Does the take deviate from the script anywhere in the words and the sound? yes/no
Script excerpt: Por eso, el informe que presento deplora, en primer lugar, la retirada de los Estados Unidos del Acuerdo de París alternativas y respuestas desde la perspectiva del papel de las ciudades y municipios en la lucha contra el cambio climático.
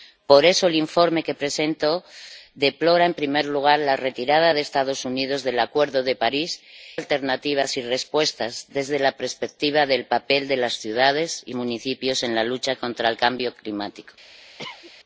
yes